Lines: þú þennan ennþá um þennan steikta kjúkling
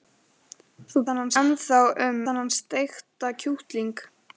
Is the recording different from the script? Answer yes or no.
no